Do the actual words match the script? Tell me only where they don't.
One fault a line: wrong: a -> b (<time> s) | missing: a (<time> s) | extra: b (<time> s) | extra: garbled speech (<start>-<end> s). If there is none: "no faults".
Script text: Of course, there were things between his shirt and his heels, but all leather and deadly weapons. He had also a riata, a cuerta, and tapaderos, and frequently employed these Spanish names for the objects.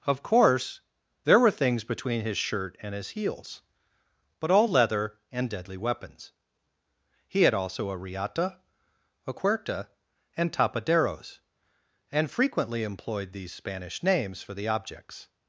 no faults